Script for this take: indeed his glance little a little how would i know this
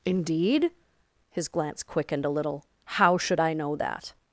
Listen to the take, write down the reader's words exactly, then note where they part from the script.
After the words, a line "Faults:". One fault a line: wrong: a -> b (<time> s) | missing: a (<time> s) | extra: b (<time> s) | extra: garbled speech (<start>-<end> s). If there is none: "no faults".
indeed his glance quickened a little how should i know that
Faults:
wrong: little -> quickened (1.8 s)
wrong: would -> should (3.2 s)
wrong: this -> that (3.7 s)